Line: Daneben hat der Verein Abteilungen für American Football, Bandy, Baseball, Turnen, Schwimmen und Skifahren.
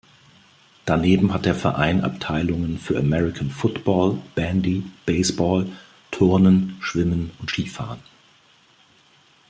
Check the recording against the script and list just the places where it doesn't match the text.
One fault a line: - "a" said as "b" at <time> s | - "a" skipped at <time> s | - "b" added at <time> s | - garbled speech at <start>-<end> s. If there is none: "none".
none